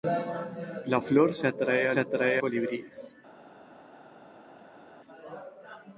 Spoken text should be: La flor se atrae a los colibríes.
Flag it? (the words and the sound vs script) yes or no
yes